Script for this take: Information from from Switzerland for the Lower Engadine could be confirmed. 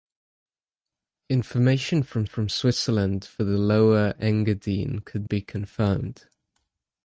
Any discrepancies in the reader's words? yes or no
no